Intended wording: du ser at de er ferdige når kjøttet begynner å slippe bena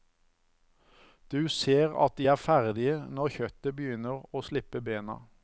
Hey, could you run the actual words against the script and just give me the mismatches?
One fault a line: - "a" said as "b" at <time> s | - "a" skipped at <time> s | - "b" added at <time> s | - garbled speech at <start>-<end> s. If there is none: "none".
none